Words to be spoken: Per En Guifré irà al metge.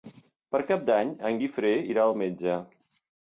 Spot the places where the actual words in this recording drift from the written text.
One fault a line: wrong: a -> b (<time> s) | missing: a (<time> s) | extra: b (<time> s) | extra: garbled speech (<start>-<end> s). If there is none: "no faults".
extra: Cap d'Any (0.7 s)